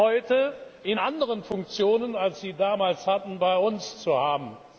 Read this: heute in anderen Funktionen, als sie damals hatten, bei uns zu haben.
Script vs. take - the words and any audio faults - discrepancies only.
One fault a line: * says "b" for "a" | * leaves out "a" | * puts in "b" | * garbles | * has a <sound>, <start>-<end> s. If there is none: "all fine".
all fine